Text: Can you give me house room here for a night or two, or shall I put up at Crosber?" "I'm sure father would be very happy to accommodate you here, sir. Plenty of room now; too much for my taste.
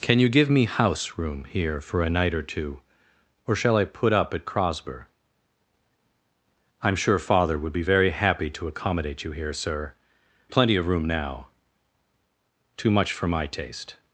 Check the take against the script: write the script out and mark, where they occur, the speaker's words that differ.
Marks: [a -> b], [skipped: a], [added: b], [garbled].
Can you give me house room here for a night or two, or shall I put up at Crosber?" "I'm sure father would be very happy to accommodate you here, sir. Plenty of room now; too much for my taste.